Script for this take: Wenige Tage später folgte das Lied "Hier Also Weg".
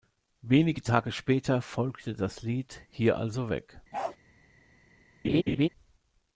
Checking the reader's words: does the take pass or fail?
pass